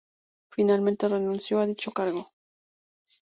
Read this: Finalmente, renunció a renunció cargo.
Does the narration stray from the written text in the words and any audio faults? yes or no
yes